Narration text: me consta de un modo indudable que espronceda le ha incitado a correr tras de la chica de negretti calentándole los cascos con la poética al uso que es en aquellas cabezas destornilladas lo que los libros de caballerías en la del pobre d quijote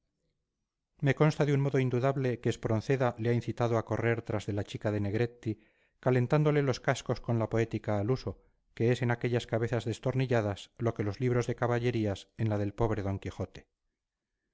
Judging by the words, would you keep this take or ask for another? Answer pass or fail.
pass